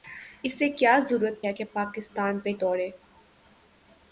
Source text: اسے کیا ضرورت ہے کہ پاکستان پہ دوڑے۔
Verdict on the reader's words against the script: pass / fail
pass